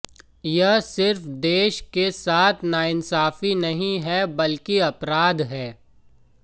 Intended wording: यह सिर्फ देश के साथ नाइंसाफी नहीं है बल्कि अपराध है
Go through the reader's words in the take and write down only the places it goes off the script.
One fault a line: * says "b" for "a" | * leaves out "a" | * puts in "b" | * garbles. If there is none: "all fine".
all fine